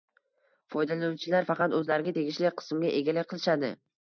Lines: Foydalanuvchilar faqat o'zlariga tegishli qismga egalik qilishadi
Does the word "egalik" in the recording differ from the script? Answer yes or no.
no